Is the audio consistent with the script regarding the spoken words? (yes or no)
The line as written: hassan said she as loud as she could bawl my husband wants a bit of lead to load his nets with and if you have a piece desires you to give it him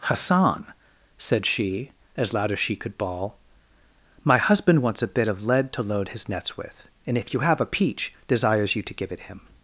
no